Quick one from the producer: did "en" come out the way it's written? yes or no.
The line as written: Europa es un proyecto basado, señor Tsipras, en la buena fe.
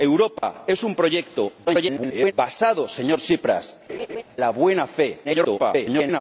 no